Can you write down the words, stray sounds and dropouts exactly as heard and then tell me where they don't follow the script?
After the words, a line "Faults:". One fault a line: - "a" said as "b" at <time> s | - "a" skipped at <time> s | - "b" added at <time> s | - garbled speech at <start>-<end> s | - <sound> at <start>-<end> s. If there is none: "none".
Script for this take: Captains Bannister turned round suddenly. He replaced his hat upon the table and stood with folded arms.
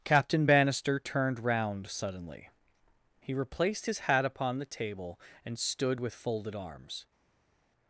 Captain Bannister turned round suddenly. He replaced his hat upon the table and stood with folded arms.
Faults:
- "Captains" said as "Captain" at 0.0 s